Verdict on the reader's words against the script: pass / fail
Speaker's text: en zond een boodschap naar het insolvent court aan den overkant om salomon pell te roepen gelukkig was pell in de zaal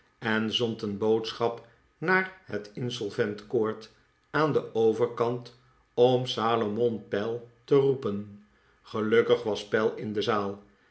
pass